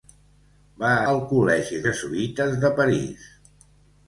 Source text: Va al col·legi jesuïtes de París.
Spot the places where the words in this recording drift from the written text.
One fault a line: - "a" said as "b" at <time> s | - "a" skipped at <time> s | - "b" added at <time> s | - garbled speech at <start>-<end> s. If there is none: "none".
none